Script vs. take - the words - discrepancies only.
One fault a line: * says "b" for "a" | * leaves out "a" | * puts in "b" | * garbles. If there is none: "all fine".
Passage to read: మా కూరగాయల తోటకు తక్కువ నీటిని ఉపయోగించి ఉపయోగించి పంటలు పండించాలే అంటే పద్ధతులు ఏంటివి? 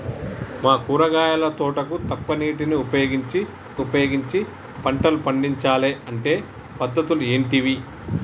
all fine